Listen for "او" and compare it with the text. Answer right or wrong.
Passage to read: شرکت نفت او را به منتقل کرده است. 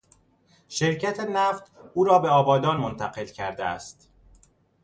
right